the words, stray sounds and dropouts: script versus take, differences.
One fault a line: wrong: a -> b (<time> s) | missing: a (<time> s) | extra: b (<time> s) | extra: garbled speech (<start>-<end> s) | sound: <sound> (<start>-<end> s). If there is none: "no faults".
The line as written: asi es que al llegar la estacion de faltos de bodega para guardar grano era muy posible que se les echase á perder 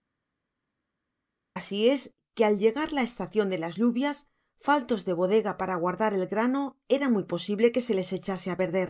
extra: las lluvias (3.6 s)
extra: el (6.1 s)